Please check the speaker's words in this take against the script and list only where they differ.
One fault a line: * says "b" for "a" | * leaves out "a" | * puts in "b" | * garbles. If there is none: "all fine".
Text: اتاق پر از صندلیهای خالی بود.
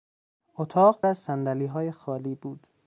* leaves out "پر"